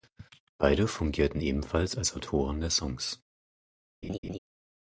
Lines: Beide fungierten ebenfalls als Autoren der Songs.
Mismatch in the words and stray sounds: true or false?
true